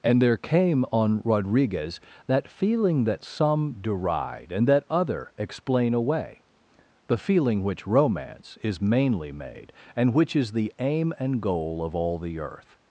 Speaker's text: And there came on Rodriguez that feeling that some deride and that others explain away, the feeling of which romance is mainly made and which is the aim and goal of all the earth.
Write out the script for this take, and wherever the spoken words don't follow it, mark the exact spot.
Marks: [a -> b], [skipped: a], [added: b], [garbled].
And there came on Rodriguez that feeling that some deride and that [others -> other] explain away, the feeling [skipped: of] which romance is mainly made and which is the aim and goal of all the earth.